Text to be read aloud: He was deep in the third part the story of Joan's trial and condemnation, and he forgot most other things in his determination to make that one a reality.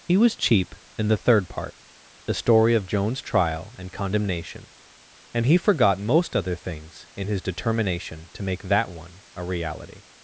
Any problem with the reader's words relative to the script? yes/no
yes